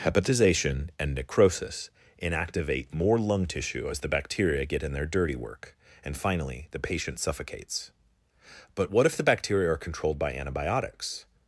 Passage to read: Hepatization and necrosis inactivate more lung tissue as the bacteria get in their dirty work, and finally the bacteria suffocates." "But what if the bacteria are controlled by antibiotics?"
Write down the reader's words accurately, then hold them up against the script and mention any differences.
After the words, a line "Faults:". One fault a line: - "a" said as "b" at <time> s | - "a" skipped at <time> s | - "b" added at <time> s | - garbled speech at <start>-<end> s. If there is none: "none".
Hepatization and necrosis inactivate more lung tissue as the bacteria get in their dirty work, and finally the patient suffocates." "But what if the bacteria are controlled by antibiotics?"
Faults:
- "bacteria" said as "patient" at 6.8 s